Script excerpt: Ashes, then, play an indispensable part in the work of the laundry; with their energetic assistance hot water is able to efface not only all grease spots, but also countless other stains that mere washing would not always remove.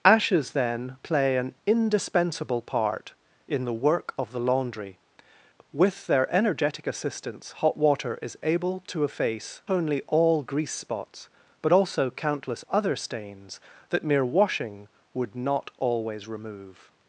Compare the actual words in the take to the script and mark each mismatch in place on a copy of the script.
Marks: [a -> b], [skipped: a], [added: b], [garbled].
Ashes, then, play an indispensable part in the work of the laundry; with their energetic assistance hot water is able to efface [skipped: not] only all grease spots, but also countless other stains that mere washing would not always remove.